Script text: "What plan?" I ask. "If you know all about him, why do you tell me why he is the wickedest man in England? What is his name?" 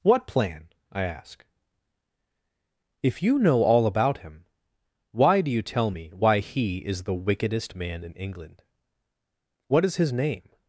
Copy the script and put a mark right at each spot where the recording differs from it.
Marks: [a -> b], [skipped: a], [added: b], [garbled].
"What plan?" I ask. "If you know all about him, why do you tell me why he is the wickedest man in England? What is his name?"